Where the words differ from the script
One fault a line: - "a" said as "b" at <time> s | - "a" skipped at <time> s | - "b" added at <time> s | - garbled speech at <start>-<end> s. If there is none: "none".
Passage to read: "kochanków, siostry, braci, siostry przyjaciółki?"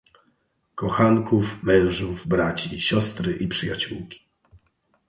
- "siostry" said as "mężów" at 1.6 s
- "i" added at 3.4 s